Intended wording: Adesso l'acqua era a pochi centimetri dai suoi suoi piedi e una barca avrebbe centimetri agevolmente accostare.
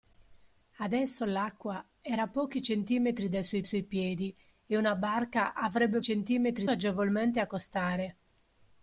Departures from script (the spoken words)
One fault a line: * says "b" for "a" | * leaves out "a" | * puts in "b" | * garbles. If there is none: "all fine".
all fine